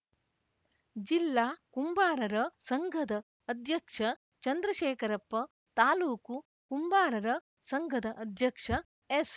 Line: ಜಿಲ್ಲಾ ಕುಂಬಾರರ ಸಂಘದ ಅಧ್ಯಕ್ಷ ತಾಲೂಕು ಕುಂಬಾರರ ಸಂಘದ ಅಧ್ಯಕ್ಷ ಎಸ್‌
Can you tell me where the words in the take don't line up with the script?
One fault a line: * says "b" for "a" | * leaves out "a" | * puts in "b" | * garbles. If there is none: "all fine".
* puts in "ಚಂದ್ರಶೇಖರಪ್ಪ"